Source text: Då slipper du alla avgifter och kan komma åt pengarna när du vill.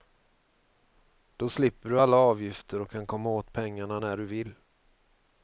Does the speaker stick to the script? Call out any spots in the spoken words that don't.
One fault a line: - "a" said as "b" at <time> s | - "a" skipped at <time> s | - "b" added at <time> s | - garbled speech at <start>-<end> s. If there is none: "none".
none